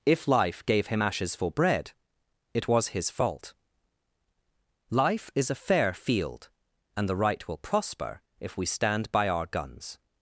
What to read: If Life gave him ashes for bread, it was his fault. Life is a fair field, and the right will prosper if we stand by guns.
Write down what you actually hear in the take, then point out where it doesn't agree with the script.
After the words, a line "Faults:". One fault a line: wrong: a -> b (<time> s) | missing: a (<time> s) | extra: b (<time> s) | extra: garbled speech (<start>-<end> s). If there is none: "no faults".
If Life gave him ashes for bread, it was his fault. Life is a fair field, and the right will prosper if we stand by our guns.
Faults:
extra: our (9.3 s)